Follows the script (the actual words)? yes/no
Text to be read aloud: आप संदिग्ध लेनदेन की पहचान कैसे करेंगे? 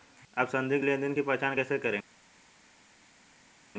yes